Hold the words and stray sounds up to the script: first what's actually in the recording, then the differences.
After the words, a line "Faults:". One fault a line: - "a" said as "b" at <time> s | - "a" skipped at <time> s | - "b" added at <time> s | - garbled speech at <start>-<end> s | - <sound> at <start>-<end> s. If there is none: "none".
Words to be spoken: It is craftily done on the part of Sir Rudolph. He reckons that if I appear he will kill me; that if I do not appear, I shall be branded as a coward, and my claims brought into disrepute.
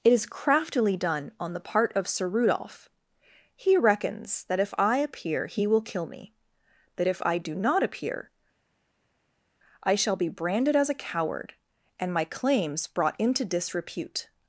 It is craftily done on the part of Sir Rudolph. He reckons that if I appear he will kill me; that if I do not appear, I shall be branded as a coward, and my claims brought into disrepute.
Faults:
none